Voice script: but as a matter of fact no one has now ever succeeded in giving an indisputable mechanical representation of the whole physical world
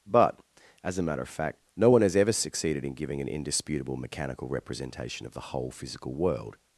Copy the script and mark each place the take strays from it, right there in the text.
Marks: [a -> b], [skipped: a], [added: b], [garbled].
but as a matter of fact no one has [skipped: now] ever succeeded in giving an indisputable mechanical representation of the whole physical world